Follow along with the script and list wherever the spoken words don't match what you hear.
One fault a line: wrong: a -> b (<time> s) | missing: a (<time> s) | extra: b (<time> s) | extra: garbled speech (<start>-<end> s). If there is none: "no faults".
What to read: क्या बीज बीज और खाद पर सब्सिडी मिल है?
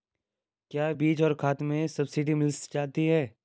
missing: बीज (1.2 s)
wrong: पर -> में (1.6 s)
extra: जाती (2.7 s)